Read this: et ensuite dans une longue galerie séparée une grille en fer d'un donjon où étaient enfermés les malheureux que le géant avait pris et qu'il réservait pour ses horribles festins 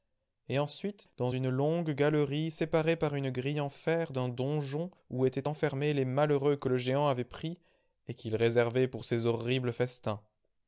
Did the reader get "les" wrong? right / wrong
right